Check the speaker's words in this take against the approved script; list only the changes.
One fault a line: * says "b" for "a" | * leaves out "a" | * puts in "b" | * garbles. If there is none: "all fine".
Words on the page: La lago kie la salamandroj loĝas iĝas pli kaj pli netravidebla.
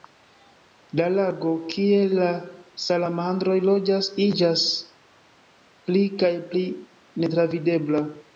all fine